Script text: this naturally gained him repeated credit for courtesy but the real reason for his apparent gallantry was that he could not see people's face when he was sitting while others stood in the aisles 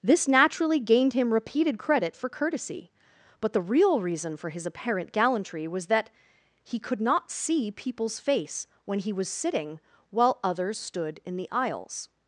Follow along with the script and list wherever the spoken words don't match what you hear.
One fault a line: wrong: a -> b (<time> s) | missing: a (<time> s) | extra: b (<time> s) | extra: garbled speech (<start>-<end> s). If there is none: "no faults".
no faults